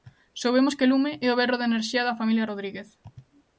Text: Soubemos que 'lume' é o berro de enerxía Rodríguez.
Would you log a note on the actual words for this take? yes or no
yes